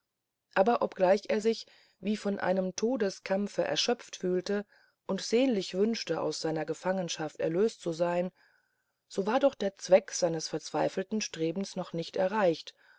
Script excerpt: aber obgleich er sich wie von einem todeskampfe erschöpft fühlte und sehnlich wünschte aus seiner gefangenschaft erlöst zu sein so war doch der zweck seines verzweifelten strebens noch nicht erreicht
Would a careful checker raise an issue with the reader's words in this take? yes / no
no